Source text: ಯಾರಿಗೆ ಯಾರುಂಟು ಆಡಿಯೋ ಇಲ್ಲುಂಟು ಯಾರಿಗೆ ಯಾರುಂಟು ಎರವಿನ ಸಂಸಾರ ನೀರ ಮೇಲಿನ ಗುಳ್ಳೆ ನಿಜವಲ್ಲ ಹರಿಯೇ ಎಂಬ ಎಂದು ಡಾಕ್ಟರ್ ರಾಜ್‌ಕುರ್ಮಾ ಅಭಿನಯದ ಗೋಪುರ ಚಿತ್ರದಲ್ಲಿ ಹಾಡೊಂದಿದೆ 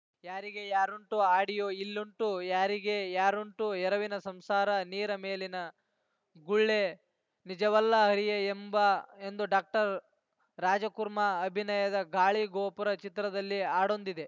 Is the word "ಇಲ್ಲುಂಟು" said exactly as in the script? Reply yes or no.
yes